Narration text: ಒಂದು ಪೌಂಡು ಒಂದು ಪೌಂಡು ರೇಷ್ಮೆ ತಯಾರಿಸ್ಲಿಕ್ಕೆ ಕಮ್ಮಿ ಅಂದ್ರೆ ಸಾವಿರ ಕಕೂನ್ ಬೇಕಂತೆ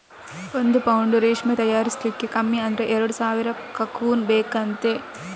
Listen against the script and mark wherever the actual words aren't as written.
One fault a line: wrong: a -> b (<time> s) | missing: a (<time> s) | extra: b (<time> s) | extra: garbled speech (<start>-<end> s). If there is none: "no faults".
missing: ಒಂದು ಪೌಂಡು (1.2 s)
extra: ಎರಡು (3.0 s)